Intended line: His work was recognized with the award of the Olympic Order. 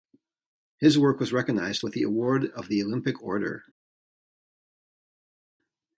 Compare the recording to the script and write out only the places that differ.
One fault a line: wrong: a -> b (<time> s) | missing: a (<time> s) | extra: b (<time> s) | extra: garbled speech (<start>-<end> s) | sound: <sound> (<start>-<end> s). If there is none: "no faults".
no faults